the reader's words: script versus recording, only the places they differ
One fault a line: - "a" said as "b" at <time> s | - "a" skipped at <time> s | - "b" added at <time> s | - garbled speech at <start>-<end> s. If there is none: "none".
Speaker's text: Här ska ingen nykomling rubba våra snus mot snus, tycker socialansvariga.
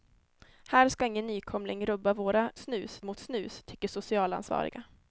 none